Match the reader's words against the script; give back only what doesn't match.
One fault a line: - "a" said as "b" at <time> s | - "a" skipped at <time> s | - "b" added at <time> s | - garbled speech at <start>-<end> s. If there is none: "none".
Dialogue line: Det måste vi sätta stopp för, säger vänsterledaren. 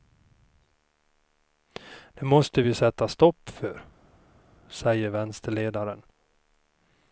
none